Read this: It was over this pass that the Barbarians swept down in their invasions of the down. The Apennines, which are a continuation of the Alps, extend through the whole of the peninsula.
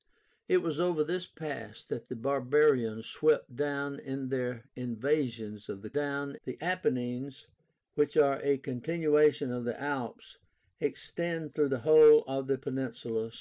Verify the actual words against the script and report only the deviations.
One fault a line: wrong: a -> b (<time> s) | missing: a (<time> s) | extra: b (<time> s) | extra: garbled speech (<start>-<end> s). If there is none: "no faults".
no faults